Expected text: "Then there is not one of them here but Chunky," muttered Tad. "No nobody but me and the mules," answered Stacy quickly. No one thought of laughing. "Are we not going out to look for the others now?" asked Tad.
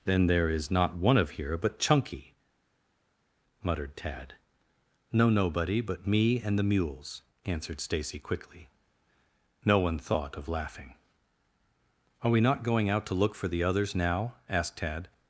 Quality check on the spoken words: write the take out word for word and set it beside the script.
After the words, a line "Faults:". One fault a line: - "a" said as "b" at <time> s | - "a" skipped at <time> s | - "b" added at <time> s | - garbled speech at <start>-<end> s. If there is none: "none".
"Then there is not one of here but Chunky," muttered Tad. "No nobody but me and the mules," answered Stacy quickly. No one thought of laughing. "Are we not going out to look for the others now?" asked Tad.
Faults:
- "them" skipped at 1.3 s